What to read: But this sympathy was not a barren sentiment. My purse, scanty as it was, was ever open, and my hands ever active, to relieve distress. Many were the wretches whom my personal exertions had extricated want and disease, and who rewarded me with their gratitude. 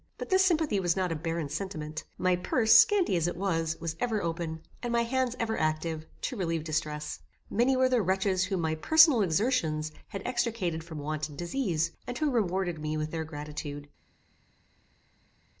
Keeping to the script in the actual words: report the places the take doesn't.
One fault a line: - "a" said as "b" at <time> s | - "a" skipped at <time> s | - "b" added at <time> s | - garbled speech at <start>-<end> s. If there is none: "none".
- "from" added at 10.8 s